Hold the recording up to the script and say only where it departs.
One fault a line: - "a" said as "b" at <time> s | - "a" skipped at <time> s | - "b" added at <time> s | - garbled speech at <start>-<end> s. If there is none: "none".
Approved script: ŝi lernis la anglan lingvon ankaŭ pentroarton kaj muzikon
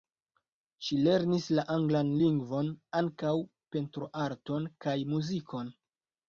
none